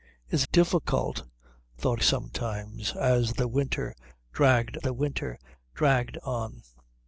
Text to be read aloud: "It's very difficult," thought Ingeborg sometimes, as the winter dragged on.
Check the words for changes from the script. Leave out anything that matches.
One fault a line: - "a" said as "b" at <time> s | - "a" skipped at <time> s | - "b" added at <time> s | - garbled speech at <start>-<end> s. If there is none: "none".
- "very" skipped at 0.5 s
- "Ingeborg" skipped at 2.0 s
- "the winter dragged" added at 4.8 s